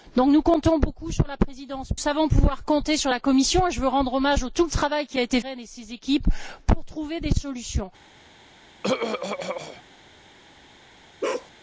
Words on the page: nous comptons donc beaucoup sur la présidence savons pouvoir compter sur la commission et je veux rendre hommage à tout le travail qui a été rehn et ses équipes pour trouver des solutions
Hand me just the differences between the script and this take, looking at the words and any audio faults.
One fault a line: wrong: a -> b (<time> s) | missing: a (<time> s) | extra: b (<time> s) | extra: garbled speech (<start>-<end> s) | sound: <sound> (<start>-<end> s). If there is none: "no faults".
sound: throat clearing (8.8-9.8 s)
sound: bark (11.2-11.5 s)